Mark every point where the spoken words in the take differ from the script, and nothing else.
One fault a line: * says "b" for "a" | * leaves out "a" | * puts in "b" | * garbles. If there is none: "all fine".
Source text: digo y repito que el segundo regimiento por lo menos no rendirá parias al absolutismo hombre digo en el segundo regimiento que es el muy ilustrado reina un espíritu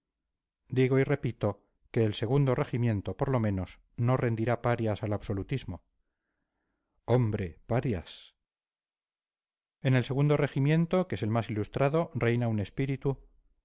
* says "parias" for "digo"
* says "más" for "muy"